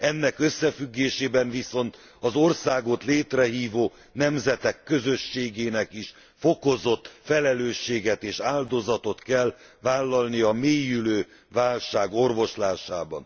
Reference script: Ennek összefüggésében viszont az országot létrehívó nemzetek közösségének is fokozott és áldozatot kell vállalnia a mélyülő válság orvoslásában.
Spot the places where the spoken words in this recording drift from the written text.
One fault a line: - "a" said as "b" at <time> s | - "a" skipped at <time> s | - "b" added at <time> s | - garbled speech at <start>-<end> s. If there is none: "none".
- "felelősséget" added at 7.2 s